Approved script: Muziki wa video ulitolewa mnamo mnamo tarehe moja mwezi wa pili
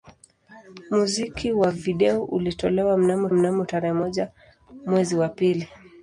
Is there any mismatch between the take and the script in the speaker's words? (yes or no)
no